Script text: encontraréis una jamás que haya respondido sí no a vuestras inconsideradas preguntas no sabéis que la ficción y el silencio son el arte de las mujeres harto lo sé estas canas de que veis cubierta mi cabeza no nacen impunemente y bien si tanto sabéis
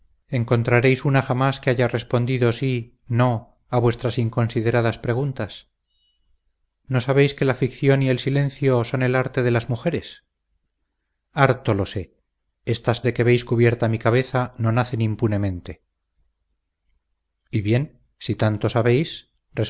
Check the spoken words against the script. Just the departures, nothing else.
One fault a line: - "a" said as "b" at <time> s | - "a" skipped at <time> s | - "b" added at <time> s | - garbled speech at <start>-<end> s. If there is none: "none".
- "canas" skipped at 13.0 s